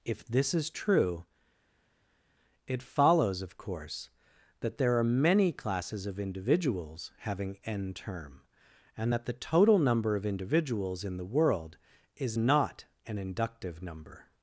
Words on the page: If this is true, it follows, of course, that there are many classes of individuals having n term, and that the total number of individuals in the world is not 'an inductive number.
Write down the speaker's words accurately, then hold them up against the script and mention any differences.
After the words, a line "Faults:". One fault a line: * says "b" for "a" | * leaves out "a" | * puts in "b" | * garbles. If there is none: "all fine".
If this is true, it follows, of course, that there are many classes of individuals having n term, and that the total number of individuals in the world is not 'an inductive number.
Faults:
all fine